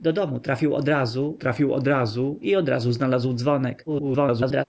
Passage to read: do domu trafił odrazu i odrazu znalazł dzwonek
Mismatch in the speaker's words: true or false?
true